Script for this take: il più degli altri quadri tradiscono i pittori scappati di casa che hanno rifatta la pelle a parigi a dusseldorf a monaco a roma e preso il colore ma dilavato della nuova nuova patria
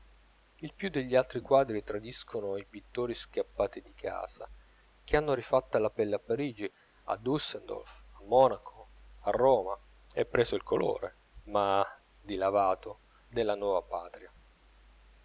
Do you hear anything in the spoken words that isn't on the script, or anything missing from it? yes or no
yes